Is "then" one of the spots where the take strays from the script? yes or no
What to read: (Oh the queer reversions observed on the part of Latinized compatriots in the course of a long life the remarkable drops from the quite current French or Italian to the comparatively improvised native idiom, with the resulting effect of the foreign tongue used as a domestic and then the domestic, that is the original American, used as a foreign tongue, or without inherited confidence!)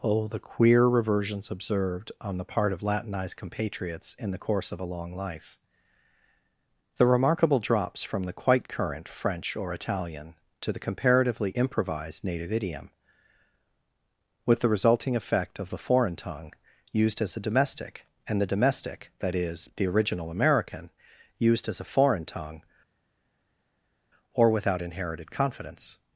yes